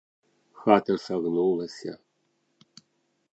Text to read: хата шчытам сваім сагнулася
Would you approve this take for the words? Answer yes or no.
no